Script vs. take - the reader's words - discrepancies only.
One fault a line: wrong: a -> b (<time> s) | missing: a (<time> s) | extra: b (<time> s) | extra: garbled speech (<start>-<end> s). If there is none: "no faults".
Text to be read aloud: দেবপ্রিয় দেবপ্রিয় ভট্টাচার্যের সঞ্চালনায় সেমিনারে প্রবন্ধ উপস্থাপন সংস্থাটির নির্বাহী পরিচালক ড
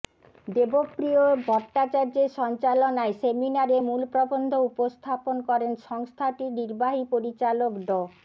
missing: দেবপ্রিয় (1.2 s)
extra: মূল (3.9 s)
extra: করেন (5.5 s)